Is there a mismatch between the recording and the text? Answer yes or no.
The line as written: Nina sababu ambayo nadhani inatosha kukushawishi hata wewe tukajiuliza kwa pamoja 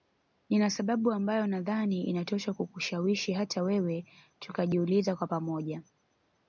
no